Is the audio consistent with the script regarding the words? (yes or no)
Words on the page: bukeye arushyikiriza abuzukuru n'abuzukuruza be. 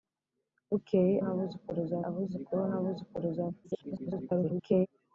no